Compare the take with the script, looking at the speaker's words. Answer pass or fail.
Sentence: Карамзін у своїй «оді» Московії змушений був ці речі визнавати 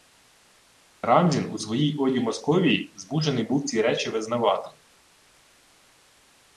pass